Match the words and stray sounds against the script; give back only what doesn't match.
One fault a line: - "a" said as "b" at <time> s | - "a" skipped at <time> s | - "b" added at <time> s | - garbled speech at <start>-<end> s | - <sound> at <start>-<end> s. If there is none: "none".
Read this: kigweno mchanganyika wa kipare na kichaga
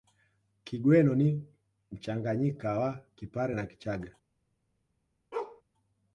- "ni" added at 1.1 s
- bark at 5.3-5.6 s